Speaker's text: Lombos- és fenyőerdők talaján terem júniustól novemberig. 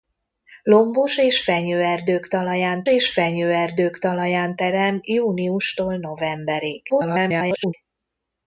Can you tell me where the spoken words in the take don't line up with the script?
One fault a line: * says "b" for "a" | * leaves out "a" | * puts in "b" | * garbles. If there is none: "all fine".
* puts in "és fenyőerdők talaján"
* garbles